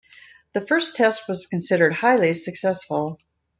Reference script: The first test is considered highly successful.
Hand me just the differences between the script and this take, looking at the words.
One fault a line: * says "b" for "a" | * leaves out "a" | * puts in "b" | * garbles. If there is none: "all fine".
* says "was" for "is"